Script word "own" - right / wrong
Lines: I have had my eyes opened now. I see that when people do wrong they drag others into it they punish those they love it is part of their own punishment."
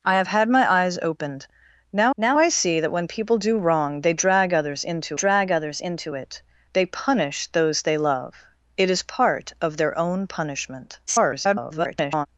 right